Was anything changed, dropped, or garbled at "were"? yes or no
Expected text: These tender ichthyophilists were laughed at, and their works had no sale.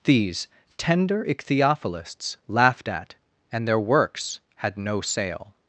yes